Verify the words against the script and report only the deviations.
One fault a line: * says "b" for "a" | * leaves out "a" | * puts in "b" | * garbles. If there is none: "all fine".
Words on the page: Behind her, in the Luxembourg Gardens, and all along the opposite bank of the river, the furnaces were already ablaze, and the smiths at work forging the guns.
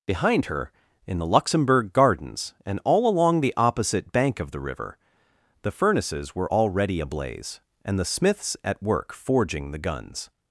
all fine